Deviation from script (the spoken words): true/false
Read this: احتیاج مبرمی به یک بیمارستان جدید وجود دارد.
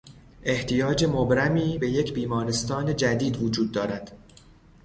false